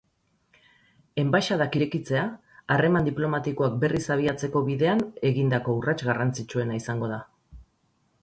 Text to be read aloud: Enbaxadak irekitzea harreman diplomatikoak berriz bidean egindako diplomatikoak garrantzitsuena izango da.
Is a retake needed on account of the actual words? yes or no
yes